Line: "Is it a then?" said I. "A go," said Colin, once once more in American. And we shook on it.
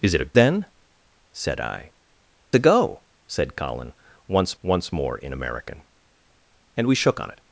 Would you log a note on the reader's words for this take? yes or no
no